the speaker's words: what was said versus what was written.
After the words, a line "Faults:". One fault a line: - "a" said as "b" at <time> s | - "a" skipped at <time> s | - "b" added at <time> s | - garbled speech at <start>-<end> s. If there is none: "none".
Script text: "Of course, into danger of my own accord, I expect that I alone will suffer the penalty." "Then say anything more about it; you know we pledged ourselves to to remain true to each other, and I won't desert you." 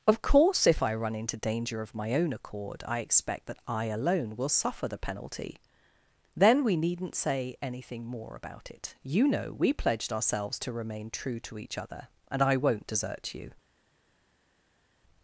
"Of course, if I run into danger of my own accord, I expect that I alone will suffer the penalty." "Then we needn't say anything more about it; you know we pledged ourselves to remain true to each other, and I won't desert you."
Faults:
- "if I run" added at 0.7 s
- "we needn't" added at 6.6 s
- "to" skipped at 10.7 s